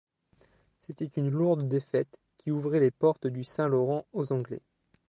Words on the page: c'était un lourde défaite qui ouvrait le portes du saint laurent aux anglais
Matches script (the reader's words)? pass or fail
fail